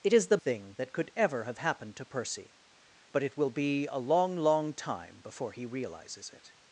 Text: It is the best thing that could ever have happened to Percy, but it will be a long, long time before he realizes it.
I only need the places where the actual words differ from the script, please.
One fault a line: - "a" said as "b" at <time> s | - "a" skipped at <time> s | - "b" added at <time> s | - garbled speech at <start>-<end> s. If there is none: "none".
- "best" skipped at 0.4 s